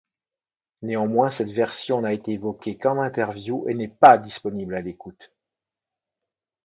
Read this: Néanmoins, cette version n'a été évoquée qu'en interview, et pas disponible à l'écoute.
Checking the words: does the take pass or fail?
fail